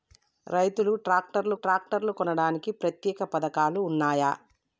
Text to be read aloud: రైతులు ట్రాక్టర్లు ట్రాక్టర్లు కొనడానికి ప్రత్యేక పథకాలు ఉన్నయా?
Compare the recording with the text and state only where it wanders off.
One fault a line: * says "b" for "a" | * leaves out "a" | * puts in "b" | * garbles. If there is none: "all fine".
all fine